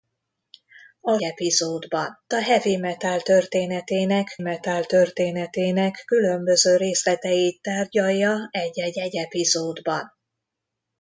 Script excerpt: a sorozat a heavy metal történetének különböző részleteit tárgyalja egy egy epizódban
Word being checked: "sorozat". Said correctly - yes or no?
no